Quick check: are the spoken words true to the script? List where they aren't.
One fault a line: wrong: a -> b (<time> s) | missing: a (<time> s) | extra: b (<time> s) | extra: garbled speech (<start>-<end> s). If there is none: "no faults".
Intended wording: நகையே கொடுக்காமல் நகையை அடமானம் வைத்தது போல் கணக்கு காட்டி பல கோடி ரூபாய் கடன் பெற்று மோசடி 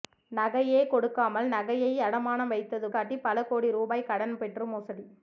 missing: போல் கணக்கு (2.9 s)